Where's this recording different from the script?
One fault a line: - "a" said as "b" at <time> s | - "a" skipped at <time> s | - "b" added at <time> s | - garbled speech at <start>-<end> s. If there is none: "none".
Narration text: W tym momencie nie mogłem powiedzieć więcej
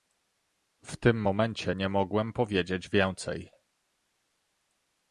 none